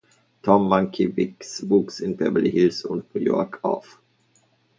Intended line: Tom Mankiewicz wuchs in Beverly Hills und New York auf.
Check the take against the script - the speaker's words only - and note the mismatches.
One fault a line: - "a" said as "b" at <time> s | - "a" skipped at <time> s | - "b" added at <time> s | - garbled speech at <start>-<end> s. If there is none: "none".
none